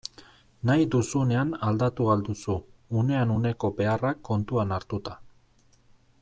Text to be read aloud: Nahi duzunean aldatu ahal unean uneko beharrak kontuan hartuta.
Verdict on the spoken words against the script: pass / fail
fail